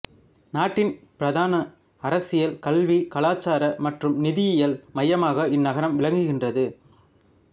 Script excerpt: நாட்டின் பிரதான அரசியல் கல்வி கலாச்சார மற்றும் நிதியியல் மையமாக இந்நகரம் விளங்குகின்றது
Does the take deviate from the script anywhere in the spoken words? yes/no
no